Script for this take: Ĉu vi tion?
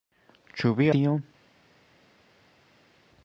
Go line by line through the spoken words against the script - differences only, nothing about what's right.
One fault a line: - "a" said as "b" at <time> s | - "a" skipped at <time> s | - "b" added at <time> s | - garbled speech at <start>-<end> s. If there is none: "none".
none